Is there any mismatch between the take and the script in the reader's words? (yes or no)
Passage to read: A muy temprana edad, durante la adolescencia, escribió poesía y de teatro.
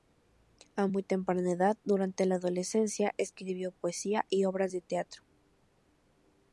yes